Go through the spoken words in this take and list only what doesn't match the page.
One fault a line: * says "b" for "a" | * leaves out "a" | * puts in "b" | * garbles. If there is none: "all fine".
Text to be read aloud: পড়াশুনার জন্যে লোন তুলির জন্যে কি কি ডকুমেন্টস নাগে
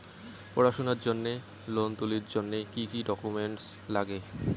all fine